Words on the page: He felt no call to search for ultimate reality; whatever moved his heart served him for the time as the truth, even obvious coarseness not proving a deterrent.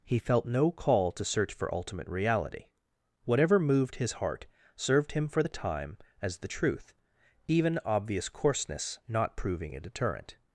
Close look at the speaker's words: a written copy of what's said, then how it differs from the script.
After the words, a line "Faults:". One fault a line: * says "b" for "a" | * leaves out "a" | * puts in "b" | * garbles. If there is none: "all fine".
He felt no call to search for ultimate reality; whatever moved his heart served him for the time as the truth, even obvious coarseness not proving a deterrent.
Faults:
all fine